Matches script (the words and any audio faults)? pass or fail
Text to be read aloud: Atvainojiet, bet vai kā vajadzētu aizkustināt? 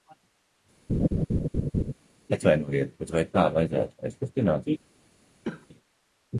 fail